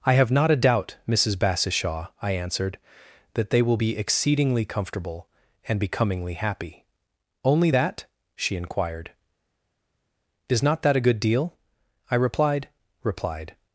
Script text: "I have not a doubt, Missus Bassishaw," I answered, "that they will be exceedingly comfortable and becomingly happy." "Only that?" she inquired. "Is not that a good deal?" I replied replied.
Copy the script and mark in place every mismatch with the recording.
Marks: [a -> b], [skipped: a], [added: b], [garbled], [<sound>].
"I have not a doubt, Missus Bassishaw," I answered, "that they will be exceedingly comfortable and becomingly happy." "Only that?" she inquired. "Is not that a good deal?" I replied replied.